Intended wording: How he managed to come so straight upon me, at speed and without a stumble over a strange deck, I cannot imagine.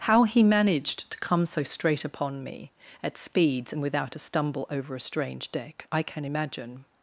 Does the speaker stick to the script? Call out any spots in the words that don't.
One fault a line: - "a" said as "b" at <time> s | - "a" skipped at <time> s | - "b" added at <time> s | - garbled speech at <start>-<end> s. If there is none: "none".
- "speed" said as "speeds" at 3.2 s
- "cannot" said as "can" at 6.0 s